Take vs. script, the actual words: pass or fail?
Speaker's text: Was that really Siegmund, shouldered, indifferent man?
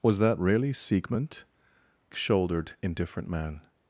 pass